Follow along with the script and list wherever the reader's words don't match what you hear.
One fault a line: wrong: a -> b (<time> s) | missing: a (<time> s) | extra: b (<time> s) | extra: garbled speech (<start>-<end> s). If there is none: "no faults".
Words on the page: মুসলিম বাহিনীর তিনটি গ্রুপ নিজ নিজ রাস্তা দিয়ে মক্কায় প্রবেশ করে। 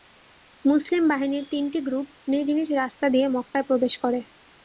no faults